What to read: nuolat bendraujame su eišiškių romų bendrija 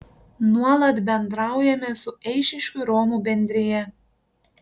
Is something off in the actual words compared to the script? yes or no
no